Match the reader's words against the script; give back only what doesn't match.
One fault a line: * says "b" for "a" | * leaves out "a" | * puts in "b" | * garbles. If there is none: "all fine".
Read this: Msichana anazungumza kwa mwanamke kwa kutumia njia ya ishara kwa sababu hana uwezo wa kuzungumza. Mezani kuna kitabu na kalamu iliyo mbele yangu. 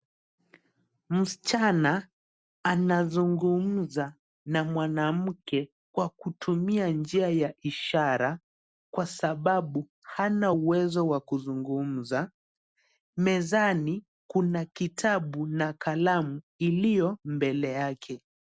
* says "na" for "kwa"
* says "yake" for "yangu"